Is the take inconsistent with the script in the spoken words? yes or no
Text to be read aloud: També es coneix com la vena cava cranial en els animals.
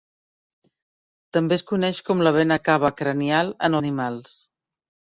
yes